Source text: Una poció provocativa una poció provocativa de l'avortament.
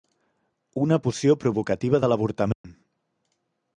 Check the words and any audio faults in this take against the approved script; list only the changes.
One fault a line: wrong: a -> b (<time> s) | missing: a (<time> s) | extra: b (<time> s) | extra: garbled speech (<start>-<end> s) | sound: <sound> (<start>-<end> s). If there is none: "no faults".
missing: una poció provocativa (2.0 s)
sound: dropout (2.5-2.6 s)